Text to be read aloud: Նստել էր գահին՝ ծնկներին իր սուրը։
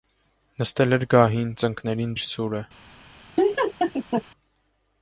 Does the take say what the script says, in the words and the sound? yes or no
no